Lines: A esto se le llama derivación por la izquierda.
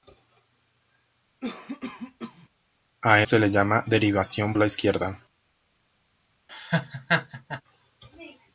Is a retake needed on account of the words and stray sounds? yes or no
yes